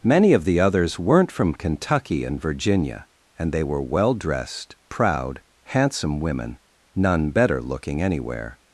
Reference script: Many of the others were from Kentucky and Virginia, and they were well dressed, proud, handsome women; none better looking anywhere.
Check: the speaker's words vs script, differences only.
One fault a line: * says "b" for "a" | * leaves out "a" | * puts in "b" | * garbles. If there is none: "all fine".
* says "weren't" for "were"